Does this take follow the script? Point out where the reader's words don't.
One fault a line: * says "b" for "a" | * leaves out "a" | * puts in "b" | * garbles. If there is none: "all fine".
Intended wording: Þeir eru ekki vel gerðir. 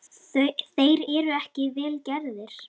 all fine